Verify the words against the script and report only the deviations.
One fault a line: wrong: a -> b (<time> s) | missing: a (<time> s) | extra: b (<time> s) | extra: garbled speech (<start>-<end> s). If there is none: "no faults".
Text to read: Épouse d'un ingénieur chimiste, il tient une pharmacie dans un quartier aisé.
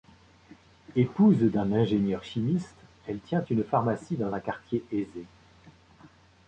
wrong: il -> elle (3.0 s)